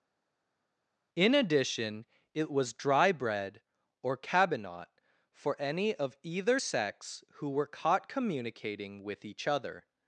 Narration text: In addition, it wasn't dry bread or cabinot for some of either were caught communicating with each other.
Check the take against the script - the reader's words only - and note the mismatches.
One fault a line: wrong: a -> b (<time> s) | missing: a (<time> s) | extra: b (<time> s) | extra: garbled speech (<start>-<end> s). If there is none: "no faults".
wrong: wasn't -> was (2.5 s)
wrong: some -> any (5.6 s)
extra: sex who (6.6 s)